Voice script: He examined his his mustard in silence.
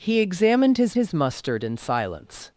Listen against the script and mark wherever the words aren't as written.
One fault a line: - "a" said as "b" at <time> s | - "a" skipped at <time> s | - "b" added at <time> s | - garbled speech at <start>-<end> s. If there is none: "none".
none